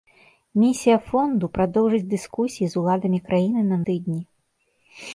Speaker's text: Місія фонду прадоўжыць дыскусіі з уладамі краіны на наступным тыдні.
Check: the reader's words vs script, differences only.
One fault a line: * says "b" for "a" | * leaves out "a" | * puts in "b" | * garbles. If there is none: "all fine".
* leaves out "наступным"